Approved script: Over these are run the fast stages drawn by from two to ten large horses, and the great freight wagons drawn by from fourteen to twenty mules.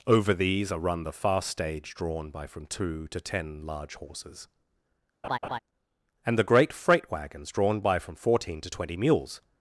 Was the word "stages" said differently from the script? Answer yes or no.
yes